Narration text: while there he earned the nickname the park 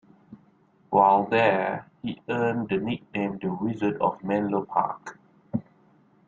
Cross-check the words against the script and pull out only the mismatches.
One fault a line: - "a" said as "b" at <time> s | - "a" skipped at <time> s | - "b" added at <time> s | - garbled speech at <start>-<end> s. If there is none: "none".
- "wizard of menlo" added at 3.5 s